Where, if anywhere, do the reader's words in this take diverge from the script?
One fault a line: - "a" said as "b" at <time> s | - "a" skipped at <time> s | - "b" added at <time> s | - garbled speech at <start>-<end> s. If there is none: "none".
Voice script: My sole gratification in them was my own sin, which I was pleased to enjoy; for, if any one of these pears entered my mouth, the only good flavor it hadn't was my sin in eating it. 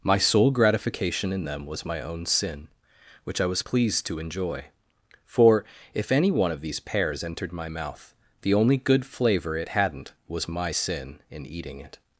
none